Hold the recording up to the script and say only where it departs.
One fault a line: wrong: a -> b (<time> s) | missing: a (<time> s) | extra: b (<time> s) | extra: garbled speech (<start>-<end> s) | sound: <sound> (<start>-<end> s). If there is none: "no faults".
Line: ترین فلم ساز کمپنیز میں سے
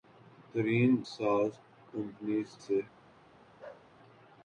missing: فلم (0.9 s)
missing: میں (2.5 s)
sound: bark (3.6-3.9 s)